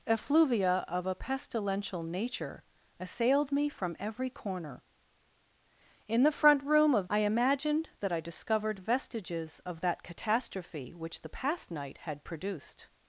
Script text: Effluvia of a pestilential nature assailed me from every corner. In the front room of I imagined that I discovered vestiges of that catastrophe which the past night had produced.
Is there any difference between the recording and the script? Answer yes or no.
no